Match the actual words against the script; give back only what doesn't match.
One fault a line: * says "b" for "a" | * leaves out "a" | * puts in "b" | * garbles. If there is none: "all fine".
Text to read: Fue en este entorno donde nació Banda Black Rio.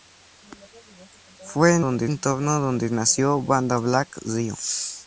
* says "donde" for "este"